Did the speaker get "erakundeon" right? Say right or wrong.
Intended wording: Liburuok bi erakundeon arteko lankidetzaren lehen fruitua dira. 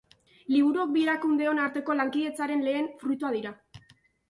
right